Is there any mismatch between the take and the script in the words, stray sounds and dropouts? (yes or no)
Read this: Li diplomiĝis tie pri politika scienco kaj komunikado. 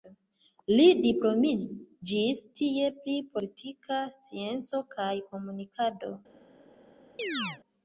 yes